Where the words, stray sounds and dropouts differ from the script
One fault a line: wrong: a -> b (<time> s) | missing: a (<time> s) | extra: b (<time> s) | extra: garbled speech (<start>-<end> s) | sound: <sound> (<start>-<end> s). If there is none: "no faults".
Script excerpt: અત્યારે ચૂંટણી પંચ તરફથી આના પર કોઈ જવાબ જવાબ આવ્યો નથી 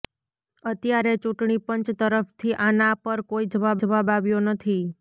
no faults